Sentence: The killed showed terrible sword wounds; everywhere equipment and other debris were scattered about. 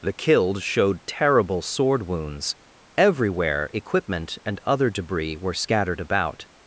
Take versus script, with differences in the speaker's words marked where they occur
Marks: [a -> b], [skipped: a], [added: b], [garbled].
The killed showed terrible sword wounds; everywhere equipment and other debris were scattered about.